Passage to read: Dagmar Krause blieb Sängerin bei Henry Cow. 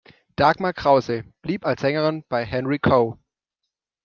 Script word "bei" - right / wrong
right